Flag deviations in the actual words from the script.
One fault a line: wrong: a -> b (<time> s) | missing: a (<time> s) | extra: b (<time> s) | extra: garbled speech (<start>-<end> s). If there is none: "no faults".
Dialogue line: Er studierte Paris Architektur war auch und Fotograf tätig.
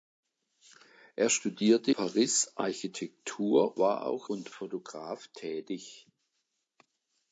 no faults